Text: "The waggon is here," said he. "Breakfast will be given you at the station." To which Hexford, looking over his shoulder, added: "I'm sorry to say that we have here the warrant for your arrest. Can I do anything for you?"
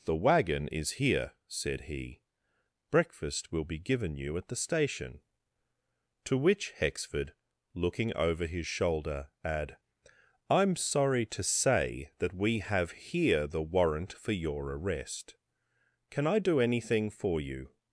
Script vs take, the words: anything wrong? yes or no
yes